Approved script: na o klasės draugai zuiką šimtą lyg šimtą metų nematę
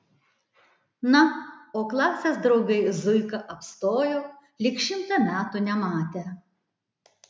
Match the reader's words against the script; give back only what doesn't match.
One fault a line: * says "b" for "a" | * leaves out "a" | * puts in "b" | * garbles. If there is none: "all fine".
* says "apstojo" for "šimtą"